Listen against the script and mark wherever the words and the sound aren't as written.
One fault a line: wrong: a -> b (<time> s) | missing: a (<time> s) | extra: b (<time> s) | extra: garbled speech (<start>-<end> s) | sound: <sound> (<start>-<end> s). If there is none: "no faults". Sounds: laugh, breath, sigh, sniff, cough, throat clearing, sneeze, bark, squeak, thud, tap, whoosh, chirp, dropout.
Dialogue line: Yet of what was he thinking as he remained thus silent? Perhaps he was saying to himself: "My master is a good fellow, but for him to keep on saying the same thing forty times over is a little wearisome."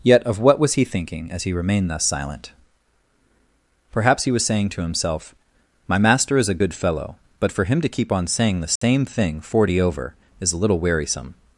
sound: dropout (8.8-8.8 s)
missing: times (9.8 s)